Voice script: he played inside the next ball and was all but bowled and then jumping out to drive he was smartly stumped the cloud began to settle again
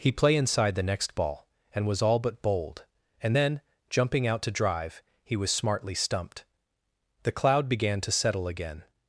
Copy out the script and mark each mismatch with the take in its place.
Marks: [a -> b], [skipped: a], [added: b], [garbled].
he [played -> play] inside the next ball and was all but bowled and then jumping out to drive he was smartly stumped the cloud began to settle again